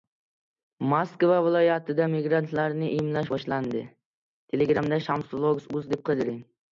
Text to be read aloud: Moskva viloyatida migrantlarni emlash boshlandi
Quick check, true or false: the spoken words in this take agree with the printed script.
true